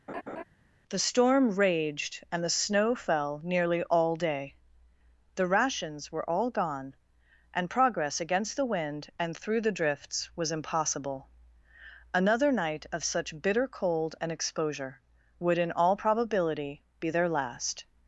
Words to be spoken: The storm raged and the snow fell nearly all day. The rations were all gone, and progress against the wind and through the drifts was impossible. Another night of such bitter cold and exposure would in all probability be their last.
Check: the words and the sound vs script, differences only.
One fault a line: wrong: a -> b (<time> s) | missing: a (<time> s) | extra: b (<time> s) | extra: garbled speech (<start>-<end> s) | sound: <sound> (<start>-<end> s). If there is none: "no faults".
sound: laugh (0.1-0.4 s)